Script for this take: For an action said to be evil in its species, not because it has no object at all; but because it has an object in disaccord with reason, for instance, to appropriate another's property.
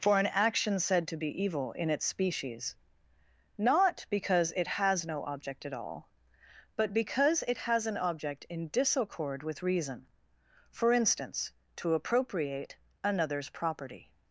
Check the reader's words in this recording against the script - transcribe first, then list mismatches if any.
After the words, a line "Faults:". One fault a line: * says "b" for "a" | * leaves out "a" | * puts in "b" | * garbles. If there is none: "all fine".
For an action said to be evil in its species, not because it has no object at all; but because it has an object in disaccord with reason, for instance, to appropriate another's property.
Faults:
all fine